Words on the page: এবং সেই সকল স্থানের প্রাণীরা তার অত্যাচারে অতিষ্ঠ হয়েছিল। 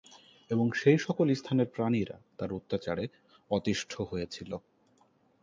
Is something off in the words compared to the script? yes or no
no